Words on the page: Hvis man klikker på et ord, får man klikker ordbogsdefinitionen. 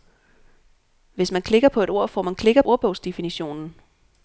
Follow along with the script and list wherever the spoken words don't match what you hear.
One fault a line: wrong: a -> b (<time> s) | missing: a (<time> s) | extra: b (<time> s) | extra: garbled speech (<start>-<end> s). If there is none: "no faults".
no faults